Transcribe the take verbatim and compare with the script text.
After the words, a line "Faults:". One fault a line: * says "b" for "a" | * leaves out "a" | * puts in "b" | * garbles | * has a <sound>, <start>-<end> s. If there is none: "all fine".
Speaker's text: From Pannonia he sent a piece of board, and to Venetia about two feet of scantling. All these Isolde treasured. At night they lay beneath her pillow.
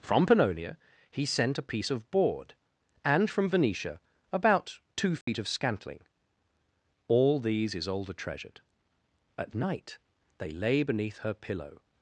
From Pannonia he sent a piece of board, and from Venetia about two feet of scantling. All these Isolde treasured. At night they lay beneath her pillow.
Faults:
* says "from" for "to"
* has a dropout, 5.2-5.3 s